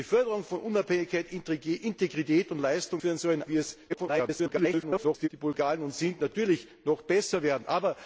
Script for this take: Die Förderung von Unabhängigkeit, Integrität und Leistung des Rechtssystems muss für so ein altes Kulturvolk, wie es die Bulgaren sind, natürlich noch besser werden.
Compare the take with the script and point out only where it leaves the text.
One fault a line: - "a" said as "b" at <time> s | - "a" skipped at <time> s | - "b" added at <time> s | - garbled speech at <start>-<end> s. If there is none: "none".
- "des Rechtssystems muss" skipped at 3.0 s
- "altes Kulturvolk" skipped at 3.4 s
- garbled speech at 3.9-5.3 s